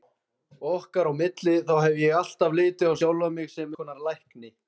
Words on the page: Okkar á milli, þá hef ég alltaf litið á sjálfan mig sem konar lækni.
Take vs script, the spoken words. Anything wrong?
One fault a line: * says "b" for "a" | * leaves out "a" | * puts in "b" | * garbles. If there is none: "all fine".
all fine